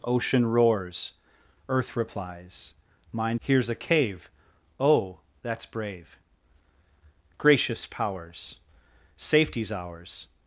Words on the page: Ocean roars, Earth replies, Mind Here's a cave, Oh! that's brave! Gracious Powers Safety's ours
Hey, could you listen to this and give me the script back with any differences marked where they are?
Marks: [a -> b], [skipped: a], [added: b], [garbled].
Ocean roars, Earth replies, Mind Here's a cave, Oh! that's brave! Gracious Powers Safety's ours